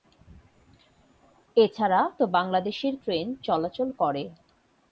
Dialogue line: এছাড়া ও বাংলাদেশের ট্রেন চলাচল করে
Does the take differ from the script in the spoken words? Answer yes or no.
no